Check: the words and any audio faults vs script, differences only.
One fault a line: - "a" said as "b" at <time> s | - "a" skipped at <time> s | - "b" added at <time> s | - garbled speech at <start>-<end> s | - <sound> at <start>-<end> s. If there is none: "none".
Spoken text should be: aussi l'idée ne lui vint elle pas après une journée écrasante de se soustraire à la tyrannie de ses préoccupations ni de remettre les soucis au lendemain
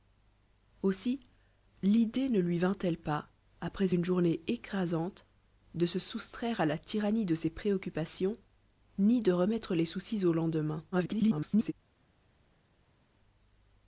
- garbled speech at 10.9-11.7 s